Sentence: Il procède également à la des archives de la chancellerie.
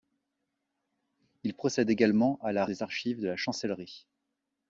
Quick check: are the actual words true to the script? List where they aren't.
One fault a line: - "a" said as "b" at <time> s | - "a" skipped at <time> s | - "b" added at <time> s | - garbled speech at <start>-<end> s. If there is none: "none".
none